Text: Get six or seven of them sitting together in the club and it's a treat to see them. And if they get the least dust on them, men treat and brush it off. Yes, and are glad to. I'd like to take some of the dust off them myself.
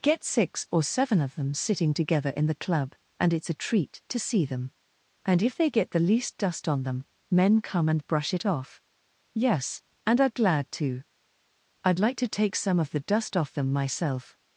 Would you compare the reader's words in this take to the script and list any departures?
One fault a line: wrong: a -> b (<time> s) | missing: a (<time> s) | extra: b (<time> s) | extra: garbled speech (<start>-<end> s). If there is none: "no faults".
wrong: treat -> come (7.6 s)